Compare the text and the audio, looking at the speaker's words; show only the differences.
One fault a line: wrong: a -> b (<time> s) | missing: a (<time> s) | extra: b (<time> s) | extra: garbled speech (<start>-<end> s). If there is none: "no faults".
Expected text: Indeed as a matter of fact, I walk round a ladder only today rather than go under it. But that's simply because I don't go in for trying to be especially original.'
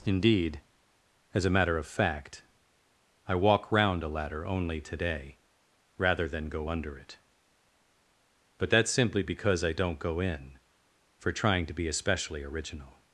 no faults